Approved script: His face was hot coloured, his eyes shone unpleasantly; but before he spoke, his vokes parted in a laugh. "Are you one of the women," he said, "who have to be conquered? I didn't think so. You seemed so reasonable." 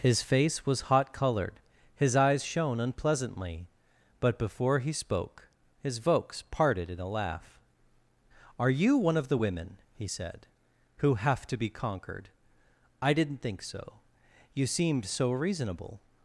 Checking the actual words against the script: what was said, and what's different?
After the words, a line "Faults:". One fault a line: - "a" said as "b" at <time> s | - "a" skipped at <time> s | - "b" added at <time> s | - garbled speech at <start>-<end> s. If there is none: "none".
His face was hot coloured, his eyes shone unpleasantly; but before he spoke, his vokes parted in a laugh. "Are you one of the women," he said, "who have to be conquered? I didn't think so. You seemed so reasonable."
Faults:
none